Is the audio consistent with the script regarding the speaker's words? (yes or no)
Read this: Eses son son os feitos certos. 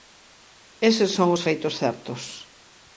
no